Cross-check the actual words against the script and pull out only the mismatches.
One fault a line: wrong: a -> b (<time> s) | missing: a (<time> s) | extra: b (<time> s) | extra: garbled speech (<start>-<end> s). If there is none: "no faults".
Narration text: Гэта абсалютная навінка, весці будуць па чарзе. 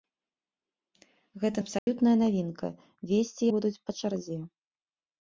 no faults